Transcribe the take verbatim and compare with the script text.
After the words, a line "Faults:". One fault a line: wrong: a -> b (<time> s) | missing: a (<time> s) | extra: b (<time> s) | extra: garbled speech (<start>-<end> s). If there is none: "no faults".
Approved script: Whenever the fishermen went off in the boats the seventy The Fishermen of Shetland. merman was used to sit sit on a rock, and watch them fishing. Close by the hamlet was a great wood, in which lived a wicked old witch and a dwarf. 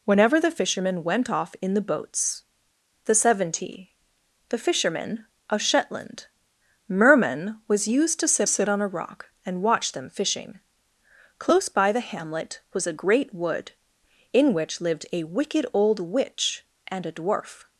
Whenever the fishermen went off in the boats the seventy The Fishermen of Shetland. merman was used to sit sit on a rock, and watch them fishing. Close by the hamlet was a great wood, in which lived a wicked old witch and a dwarf.
Faults:
no faults